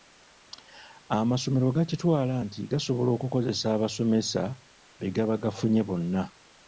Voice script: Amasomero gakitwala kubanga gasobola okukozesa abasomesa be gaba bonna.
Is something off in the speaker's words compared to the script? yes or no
yes